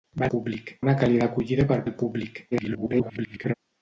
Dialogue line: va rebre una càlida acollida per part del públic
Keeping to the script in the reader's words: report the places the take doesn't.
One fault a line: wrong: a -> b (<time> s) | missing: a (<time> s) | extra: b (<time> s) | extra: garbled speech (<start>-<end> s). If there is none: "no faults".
wrong: rebre -> públic (0.4 s)
missing: part (1.8 s)
extra: garbled speech (2.5-3.5 s)